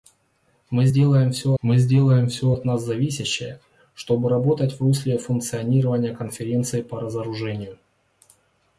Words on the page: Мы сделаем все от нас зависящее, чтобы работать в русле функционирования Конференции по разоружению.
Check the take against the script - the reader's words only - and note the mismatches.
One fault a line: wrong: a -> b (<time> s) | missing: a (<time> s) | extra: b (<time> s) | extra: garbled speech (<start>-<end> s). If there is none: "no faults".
extra: мы сделаем все (1.6 s)